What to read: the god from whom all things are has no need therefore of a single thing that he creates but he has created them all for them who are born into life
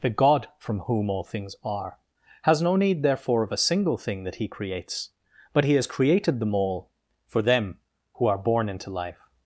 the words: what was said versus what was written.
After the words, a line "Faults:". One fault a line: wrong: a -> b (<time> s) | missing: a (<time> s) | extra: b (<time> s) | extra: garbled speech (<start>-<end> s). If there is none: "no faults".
the god from whom all things are has no need therefore of a single thing that he creates but he has created them all for them who are born into life
Faults:
no faults